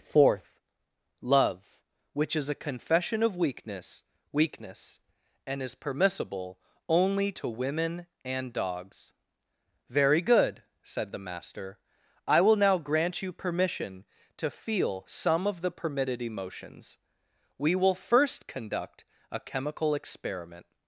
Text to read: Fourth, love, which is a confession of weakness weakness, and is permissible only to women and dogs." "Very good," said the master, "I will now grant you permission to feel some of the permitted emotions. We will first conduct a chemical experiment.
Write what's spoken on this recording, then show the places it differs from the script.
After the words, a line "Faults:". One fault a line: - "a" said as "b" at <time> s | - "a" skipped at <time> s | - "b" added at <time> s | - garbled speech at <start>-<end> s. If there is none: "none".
Fourth, love, which is a confession of weakness weakness, and is permissible only to women and dogs." "Very good," said the master, "I will now grant you permission to feel some of the permitted emotions. We will first conduct a chemical experiment.
Faults:
none